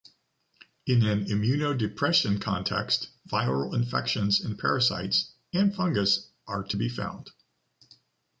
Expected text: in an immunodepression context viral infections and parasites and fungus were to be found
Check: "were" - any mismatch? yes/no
yes